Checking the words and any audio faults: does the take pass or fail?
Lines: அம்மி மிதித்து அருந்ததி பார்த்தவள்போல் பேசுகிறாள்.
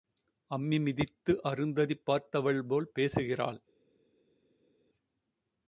pass